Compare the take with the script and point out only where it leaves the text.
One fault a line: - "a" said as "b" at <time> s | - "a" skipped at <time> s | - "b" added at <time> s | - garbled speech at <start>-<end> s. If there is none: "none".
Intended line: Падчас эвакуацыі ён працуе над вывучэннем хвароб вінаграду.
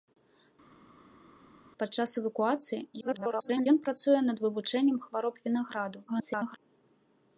- garbled speech at 3.0-3.7 s
- garbled speech at 6.1-6.6 s